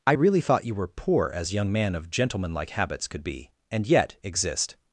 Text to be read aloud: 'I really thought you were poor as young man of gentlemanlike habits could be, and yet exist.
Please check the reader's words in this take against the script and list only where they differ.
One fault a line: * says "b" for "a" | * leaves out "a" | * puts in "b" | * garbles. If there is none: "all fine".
all fine